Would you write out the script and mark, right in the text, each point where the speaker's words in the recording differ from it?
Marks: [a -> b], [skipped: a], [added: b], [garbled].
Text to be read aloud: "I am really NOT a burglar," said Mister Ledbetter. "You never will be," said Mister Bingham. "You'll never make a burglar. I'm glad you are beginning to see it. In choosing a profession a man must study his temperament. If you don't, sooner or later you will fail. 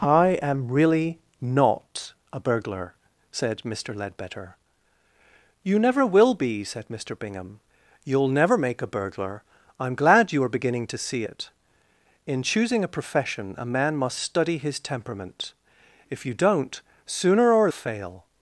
"I am really NOT a burglar," said Mister Ledbetter. "You never will be," said Mister Bingham. "You'll never make a burglar. I'm glad you are beginning to see it. In choosing a profession a man must study his temperament. If you don't, sooner or [skipped: later you will] fail.